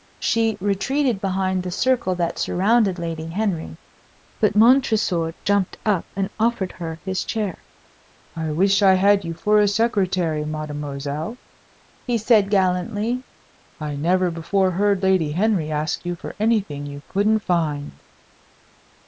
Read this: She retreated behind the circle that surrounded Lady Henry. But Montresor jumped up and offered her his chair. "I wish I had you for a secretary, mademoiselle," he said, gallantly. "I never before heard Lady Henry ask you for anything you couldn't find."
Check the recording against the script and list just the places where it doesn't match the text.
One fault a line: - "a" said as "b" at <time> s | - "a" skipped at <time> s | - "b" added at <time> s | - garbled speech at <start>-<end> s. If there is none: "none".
none